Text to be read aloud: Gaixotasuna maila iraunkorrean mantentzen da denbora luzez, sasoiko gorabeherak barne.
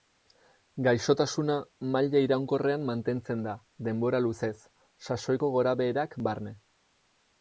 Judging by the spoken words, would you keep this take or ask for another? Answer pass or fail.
pass